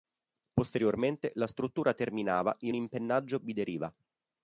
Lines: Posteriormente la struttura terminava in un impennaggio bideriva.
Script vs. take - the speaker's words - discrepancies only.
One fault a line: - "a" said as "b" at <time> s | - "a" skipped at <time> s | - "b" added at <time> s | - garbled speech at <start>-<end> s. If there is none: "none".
- "un" skipped at 2.7 s